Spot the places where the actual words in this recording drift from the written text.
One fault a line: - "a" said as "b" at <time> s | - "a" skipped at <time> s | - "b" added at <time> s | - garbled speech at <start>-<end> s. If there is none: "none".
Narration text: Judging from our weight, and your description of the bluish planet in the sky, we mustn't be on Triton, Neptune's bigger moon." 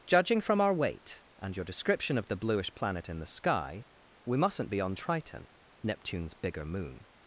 none